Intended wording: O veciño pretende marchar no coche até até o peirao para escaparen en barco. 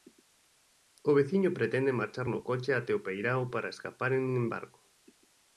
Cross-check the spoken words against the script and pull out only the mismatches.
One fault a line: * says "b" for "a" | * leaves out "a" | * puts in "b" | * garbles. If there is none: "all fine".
* leaves out "até"